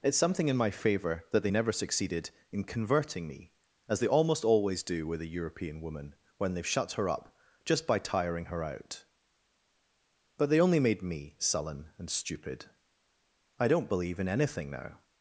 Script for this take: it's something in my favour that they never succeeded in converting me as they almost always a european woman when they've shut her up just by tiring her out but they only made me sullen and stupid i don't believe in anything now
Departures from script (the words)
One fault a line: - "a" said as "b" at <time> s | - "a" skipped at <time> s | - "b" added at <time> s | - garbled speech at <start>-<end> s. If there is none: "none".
- "do with" added at 4.8 s